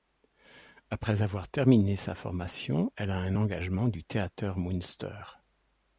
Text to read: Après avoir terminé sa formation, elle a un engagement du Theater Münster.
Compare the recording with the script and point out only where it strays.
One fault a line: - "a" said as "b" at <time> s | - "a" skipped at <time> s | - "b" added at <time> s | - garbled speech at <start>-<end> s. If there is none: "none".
none